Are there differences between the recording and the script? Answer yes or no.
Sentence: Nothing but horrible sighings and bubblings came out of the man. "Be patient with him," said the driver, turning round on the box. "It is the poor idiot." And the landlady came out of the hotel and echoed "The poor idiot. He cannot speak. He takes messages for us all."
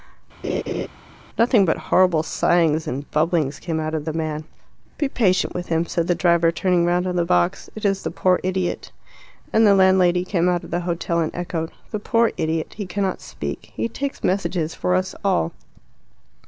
no